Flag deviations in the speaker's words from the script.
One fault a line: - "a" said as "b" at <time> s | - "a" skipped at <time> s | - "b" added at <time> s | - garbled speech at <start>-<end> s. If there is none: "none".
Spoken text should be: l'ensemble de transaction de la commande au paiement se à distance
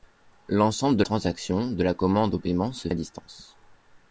none